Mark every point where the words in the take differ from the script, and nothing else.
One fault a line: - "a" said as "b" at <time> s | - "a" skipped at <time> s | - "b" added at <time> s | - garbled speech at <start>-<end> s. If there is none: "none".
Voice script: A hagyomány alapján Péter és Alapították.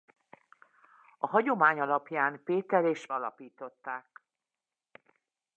none